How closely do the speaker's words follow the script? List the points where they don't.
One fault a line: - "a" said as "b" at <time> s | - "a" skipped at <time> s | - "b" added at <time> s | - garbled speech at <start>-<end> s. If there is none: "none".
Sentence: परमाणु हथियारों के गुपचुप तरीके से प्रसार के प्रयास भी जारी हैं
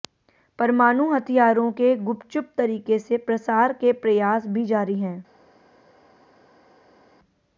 none